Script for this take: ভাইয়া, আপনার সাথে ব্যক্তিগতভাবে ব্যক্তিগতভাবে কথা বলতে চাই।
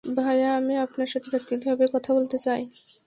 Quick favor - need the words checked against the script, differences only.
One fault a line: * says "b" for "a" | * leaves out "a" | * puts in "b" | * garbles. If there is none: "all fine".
* puts in "আমি"
* leaves out "ব্যক্তিগতভাবে"